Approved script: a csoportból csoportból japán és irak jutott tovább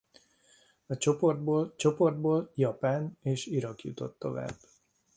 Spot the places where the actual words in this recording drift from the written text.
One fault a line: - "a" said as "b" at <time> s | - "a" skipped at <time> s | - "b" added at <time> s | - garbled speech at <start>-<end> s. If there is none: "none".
none